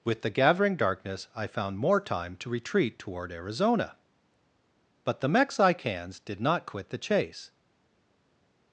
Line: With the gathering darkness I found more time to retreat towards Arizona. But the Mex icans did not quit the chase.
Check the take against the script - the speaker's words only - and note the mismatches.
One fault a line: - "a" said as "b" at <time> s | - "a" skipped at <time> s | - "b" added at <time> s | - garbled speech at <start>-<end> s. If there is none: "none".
- "towards" said as "toward" at 3.0 s